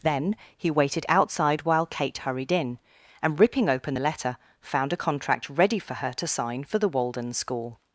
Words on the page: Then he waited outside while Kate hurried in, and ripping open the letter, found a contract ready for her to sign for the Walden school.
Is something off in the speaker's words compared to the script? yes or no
no